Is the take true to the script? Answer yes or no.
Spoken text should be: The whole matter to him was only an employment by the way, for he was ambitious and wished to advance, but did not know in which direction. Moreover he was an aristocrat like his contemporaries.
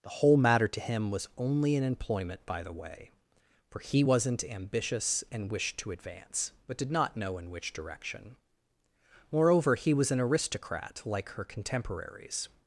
no